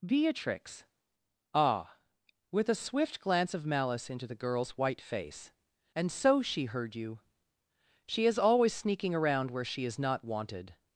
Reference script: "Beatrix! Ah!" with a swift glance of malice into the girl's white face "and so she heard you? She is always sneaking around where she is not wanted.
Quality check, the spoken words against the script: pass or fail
pass